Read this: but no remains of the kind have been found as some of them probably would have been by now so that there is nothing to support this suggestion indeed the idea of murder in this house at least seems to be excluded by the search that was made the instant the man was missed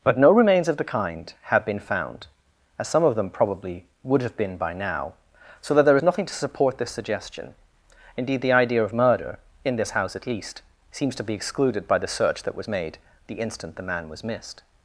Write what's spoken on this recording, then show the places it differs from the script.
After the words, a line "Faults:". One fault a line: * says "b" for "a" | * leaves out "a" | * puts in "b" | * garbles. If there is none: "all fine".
but no remains of the kind have been found as some of them probably would have been by now so that there is nothing to support this suggestion indeed the idea of murder in this house at least seems to be excluded by the search that was made the instant the man was missed
Faults:
all fine